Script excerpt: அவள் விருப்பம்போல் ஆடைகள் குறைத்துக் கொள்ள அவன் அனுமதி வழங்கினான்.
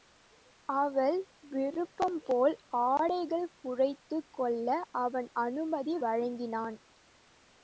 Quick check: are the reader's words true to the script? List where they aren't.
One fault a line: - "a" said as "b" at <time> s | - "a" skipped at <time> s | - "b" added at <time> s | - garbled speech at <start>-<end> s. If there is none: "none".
none